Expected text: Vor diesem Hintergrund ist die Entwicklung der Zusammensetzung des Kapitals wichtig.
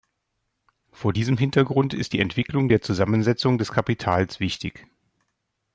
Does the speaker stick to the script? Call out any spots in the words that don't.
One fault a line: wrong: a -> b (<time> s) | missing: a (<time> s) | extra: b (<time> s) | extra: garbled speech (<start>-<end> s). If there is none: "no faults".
no faults